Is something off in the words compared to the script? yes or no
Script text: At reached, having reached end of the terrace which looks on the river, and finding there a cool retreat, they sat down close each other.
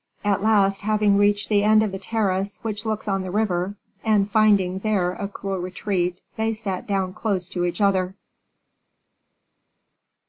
yes